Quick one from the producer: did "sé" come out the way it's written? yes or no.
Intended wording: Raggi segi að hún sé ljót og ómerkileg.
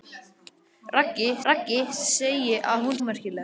no